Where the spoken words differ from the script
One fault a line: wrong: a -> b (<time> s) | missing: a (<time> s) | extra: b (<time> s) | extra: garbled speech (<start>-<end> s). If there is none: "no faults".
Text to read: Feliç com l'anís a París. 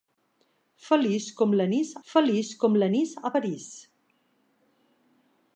extra: feliç com l'anís (2.1 s)